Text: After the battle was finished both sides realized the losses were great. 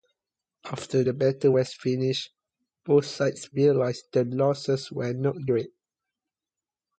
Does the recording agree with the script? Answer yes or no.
no